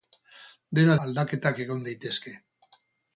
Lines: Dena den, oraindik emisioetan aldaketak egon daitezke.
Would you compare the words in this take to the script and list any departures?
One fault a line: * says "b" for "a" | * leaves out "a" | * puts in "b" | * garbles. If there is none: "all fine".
* leaves out "den oraindik emisioetan"